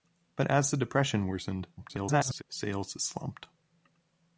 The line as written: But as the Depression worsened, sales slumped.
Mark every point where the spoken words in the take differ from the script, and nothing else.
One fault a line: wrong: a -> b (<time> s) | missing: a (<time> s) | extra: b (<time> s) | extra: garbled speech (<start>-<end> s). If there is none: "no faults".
extra: garbled speech (1.8-2.4 s)